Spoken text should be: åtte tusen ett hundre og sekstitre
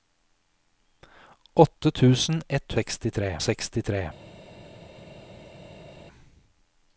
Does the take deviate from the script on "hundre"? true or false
true